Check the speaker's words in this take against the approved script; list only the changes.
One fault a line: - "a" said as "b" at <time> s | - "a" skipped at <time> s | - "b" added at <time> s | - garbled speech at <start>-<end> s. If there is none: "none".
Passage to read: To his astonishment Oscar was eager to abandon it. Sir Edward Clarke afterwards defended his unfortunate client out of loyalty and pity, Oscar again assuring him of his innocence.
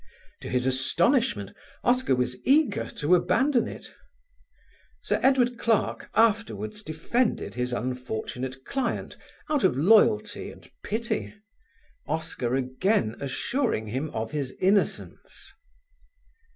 none